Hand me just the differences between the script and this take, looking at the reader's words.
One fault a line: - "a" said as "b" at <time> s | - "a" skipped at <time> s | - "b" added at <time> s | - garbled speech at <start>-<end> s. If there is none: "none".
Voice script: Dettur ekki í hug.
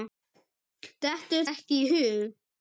none